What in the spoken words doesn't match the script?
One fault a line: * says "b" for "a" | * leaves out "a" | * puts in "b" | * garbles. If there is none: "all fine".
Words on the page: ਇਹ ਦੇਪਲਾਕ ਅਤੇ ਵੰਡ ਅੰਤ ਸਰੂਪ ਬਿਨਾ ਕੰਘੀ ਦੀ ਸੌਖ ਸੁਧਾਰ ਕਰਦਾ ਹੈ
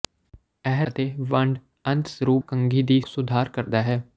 * leaves out "ਦੇਪਲਾਕ"
* leaves out "ਬਿਨਾ"
* leaves out "ਸੌਖ"